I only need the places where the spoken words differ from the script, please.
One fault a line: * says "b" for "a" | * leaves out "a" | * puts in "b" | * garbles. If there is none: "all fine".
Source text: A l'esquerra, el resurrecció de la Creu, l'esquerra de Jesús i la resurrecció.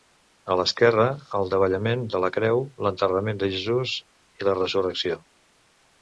* says "davallament" for "resurrecció"
* says "l'enterrament" for "l'esquerra"